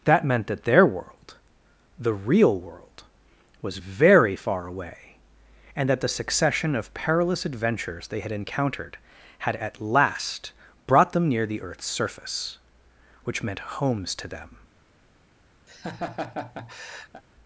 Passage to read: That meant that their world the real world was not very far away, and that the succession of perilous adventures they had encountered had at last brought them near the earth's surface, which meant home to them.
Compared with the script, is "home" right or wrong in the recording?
wrong